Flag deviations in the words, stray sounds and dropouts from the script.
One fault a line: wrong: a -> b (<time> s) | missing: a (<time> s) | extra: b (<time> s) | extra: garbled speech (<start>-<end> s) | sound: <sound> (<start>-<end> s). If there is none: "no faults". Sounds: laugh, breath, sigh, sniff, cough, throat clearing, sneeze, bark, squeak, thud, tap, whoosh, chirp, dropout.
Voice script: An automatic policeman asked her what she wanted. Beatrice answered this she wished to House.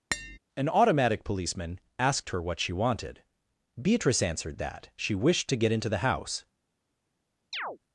sound: tap (0.1-0.4 s)
wrong: this -> that (4.6 s)
extra: get into the (5.6 s)
sound: chirp (7.5-7.8 s)